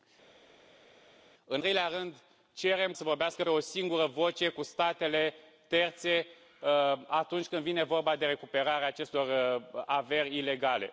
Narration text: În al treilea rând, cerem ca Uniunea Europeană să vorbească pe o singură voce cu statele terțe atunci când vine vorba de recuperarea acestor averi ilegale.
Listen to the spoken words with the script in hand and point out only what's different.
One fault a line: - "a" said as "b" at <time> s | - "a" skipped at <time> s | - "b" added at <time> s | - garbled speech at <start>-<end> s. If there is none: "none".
- "al" skipped at 1.6 s
- "ca Uniunea Europeană" skipped at 2.9 s
- "pe" skipped at 3.4 s